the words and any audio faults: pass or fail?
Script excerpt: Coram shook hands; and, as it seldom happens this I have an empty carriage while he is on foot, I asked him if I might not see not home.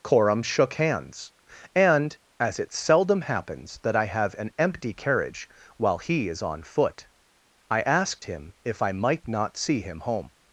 fail